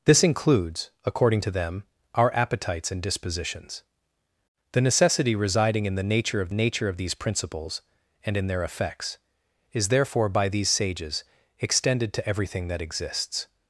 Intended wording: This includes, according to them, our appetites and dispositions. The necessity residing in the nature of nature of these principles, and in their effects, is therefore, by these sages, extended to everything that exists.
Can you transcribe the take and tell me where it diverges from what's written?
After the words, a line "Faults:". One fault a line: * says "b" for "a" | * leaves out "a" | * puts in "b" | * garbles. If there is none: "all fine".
This includes, according to them, our appetites and dispositions. The necessity residing in the nature of nature of these principles, and in their effects, is therefore, by these sages, extended to everything that exists.
Faults:
all fine